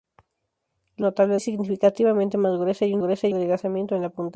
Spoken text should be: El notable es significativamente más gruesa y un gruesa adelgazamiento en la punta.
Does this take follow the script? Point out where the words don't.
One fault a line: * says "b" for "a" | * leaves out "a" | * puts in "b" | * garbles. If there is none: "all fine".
all fine